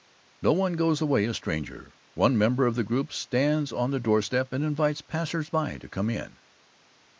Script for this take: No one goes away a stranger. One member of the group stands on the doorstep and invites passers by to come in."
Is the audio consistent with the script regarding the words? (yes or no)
yes